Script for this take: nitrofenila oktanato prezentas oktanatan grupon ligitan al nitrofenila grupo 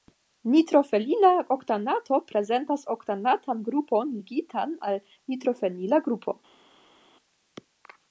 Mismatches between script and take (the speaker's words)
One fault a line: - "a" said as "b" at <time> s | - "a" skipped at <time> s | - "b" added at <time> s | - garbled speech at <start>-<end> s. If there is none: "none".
none